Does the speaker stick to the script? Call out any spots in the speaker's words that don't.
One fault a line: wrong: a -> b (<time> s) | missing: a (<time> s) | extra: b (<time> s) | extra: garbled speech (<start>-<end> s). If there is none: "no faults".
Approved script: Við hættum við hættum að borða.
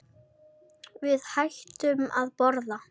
missing: við hættum (2.1 s)